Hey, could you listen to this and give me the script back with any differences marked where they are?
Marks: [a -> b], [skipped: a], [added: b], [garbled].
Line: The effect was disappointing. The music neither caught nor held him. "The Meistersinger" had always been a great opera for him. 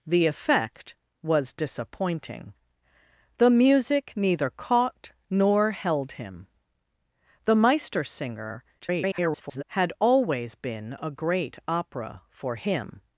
The effect was disappointing. The music neither caught nor held him. "The Meistersinger" [garbled] had always been a great opera for him.